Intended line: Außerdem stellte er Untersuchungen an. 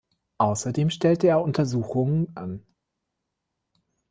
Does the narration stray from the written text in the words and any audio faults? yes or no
no